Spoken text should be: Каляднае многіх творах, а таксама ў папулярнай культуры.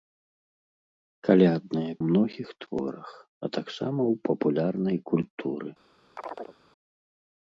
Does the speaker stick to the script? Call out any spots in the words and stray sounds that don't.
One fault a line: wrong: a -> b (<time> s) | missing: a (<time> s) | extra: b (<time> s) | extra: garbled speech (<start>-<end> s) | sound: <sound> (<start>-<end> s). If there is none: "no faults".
sound: chirp (6.2-6.6 s)